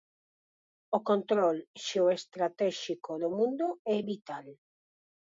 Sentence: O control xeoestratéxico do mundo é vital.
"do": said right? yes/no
yes